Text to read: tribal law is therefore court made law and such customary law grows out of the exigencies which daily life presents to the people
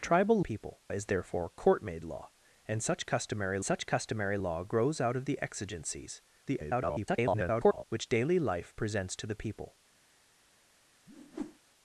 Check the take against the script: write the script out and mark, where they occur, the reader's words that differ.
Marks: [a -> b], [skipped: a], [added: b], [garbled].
tribal [law -> people] is therefore court made law and such customary [added: such customary] law grows out of the exigencies [garbled] which daily life presents to the people